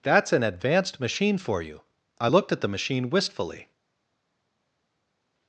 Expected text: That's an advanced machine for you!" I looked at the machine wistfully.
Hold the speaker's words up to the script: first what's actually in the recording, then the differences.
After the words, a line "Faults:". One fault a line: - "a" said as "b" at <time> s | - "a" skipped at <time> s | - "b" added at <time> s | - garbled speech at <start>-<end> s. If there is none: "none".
That's an advanced machine for you!" I looked at the machine wistfully.
Faults:
none